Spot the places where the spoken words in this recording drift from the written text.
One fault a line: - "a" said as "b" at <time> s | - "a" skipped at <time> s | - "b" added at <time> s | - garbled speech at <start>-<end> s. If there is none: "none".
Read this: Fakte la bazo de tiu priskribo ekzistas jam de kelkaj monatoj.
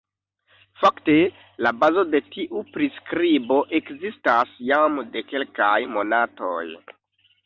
none